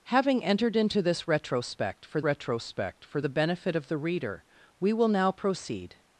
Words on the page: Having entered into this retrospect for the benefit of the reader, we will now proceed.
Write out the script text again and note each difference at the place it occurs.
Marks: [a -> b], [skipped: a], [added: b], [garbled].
Having entered into this retrospect for [added: retrospect for] the benefit of the reader, we will now proceed.